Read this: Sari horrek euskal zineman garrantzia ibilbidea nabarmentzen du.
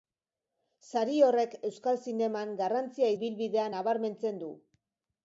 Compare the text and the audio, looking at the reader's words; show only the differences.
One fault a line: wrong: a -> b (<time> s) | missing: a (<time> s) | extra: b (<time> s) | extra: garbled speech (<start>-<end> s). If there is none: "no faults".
no faults